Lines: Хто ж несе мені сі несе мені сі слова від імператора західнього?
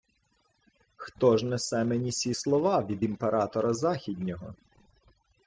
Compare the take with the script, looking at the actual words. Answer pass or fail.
fail